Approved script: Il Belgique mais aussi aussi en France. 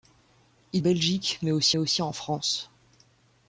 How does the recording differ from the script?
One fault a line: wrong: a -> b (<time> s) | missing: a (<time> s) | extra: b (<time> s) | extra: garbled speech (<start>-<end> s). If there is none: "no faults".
no faults